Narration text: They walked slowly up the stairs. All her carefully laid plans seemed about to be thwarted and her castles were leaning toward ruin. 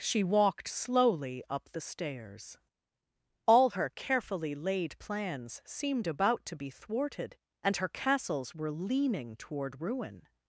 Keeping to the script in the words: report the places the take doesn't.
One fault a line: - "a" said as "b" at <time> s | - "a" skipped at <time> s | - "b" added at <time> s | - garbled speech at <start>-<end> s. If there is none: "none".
- "They" said as "She" at 0.0 s